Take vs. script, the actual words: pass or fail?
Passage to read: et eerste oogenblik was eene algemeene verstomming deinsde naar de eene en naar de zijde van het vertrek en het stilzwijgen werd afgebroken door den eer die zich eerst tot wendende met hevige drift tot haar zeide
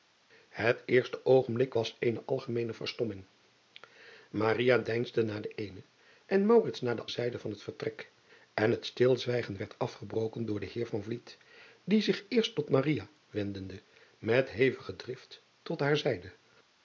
pass